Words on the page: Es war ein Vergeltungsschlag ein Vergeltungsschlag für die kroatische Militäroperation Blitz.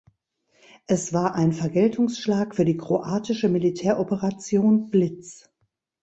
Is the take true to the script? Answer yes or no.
no